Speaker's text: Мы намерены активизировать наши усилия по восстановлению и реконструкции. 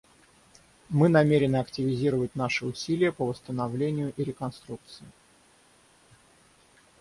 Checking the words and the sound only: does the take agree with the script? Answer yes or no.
yes